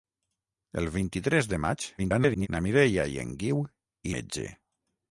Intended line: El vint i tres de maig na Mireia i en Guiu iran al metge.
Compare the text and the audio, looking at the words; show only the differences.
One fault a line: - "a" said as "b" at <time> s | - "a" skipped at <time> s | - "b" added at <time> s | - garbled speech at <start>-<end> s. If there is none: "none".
- garbled speech at 2.0-2.5 s
- "iran al" skipped at 3.6 s